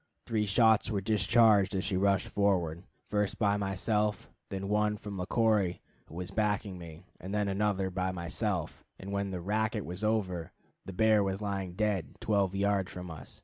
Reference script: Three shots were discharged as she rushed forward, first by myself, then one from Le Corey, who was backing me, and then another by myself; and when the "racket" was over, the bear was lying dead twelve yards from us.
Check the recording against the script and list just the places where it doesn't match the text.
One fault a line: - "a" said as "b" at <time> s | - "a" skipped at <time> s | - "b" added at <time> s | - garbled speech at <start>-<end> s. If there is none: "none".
none